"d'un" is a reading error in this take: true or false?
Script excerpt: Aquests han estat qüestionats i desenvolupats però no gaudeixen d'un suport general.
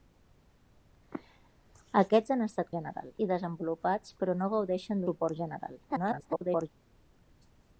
true